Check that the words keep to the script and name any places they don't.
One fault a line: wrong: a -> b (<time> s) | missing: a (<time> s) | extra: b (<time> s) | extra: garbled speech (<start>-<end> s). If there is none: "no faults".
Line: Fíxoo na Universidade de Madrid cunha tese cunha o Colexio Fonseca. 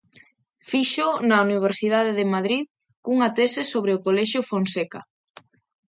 wrong: cunha -> sobre (3.7 s)